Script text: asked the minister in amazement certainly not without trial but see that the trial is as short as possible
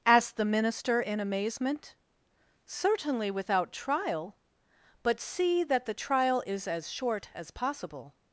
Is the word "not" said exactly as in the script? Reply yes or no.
no